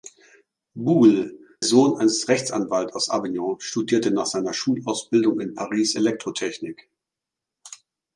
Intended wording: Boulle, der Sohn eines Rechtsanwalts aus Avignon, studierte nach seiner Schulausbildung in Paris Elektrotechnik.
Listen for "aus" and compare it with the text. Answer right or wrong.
right